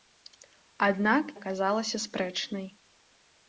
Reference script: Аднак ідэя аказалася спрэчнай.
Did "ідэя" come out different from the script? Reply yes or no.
yes